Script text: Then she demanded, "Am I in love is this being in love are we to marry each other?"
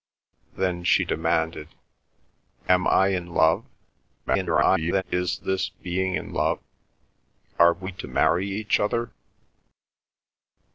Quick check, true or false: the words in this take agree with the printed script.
false